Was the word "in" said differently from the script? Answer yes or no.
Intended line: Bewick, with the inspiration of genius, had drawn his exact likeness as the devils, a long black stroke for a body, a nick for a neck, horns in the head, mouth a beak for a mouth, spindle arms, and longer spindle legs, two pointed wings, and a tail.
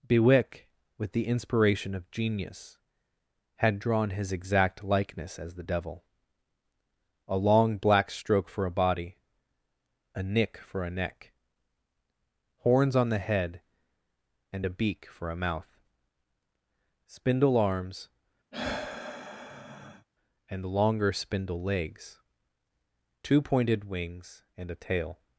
yes